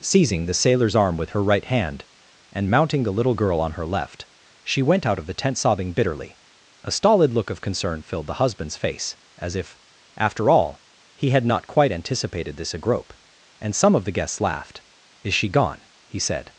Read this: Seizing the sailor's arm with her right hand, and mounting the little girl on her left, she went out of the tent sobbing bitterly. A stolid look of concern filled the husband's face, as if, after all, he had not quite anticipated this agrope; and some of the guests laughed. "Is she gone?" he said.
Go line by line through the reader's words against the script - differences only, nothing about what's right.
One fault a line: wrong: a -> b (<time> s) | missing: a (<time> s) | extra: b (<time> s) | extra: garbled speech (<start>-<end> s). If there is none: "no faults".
no faults